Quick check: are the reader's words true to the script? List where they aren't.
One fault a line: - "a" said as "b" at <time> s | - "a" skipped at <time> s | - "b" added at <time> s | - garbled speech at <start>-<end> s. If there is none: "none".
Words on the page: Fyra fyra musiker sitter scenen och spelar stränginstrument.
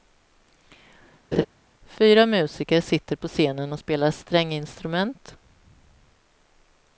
- "fyra" skipped at 2.3 s
- "på" added at 3.2 s